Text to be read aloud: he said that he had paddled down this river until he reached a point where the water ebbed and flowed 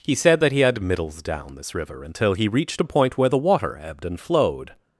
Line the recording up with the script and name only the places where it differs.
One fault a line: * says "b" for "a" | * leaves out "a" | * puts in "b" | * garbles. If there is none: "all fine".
* says "middles" for "paddled"